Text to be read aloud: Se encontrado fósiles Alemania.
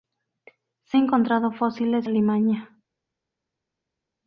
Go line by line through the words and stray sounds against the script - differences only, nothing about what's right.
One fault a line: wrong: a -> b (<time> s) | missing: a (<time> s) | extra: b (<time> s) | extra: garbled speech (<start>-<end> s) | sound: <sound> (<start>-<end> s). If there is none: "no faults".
no faults